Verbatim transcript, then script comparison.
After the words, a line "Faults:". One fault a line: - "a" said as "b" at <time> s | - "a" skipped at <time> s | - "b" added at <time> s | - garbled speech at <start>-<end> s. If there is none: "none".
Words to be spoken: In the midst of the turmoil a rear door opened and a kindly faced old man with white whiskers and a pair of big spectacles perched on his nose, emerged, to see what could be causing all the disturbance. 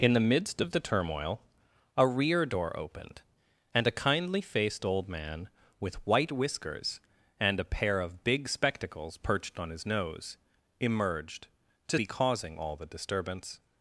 In the midst of the turmoil a rear door opened and a kindly faced old man with white whiskers and a pair of big spectacles perched on his nose, emerged, to be causing all the disturbance.
Faults:
- "see what could" skipped at 12.0 s